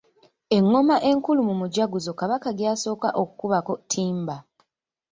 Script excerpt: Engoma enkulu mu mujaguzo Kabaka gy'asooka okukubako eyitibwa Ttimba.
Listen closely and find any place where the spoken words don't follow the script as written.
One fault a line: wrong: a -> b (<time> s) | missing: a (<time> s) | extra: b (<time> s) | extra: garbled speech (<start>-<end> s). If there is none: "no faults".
missing: eyitibwa (3.7 s)